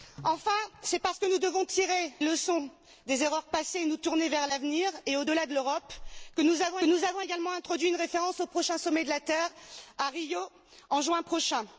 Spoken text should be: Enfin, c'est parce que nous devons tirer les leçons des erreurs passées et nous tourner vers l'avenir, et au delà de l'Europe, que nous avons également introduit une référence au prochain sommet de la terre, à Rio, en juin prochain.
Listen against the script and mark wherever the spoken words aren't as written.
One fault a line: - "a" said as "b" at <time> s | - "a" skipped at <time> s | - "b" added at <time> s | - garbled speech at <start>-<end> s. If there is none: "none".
- "les" skipped at 2.1 s
- "nous avons" added at 6.8 s